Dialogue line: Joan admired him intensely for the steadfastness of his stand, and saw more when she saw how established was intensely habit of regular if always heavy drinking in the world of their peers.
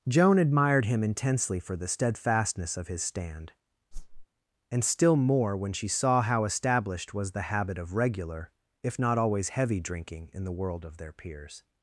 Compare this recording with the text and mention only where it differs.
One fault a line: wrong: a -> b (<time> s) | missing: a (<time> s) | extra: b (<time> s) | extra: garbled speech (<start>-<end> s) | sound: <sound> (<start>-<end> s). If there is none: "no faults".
sound: whoosh (3.9-4.3 s)
wrong: saw -> still (4.8 s)
wrong: intensely -> the (7.3 s)
extra: not (9.0 s)